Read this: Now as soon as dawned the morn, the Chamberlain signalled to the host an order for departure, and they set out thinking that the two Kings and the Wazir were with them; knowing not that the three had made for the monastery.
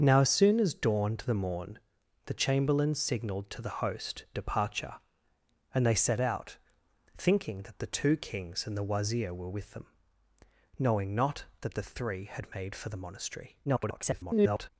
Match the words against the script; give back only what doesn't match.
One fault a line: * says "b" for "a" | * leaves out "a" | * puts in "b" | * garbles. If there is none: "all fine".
* leaves out "an order for"
* garbles